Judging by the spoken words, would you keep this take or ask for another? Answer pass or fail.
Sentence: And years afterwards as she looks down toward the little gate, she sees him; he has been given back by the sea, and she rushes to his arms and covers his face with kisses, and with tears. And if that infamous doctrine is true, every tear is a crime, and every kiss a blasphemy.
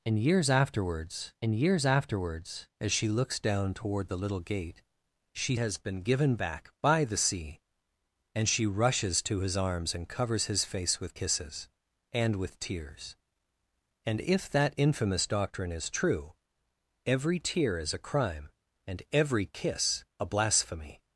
fail